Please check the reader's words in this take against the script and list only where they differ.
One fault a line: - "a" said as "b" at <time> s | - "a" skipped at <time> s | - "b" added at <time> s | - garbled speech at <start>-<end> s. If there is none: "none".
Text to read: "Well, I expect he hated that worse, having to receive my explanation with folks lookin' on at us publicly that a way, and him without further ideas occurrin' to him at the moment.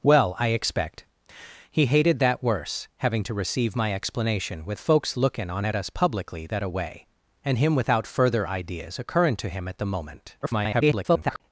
- garbled speech at 10.4-11.4 s